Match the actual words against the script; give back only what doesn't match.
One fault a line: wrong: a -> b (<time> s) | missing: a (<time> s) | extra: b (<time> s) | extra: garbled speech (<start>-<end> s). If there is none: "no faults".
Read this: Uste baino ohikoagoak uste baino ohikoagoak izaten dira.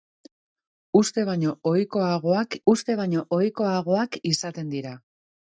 no faults